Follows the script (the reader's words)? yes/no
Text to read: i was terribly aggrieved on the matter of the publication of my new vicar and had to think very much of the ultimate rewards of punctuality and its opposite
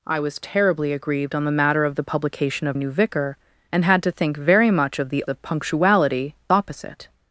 no